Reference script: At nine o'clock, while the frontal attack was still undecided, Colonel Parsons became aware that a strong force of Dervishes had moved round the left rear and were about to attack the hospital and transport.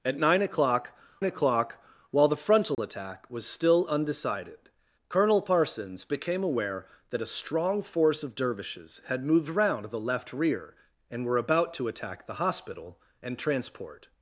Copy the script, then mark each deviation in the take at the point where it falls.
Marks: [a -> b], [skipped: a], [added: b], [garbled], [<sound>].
At nine o'clock, [added: o'clock] while the frontal [dropout] attack was still undecided, Colonel Parsons became aware that a strong force of Dervishes had moved round the left rear and were about to attack the hospital and transport.